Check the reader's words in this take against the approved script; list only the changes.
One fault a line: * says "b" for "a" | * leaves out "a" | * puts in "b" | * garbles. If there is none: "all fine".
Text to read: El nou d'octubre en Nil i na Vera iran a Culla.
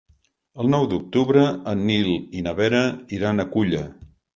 all fine